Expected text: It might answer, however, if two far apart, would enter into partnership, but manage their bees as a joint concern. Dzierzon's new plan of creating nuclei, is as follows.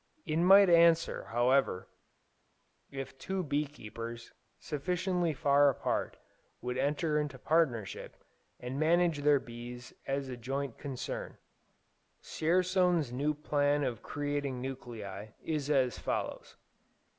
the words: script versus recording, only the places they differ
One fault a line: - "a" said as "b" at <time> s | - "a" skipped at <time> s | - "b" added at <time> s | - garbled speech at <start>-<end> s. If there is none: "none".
- "bee keepers sufficiently" added at 3.4 s
- "but" said as "and" at 8.6 s